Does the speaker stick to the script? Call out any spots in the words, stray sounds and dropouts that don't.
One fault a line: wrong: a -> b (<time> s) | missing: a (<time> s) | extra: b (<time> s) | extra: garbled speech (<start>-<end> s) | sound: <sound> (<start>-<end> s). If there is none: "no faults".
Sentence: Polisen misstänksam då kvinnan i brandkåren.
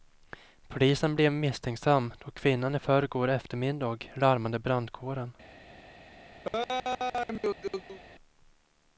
extra: blev (1.1 s)
extra: förrgår eftermiddag larmade (2.8 s)
sound: laugh (6.4-8.0 s)